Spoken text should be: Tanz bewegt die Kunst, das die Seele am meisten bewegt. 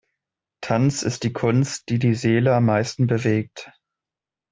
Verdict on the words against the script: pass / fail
fail